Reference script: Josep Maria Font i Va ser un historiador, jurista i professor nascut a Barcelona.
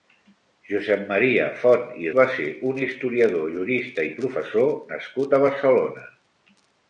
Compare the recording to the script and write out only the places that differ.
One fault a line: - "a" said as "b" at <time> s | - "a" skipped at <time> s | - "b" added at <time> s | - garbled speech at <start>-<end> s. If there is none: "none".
none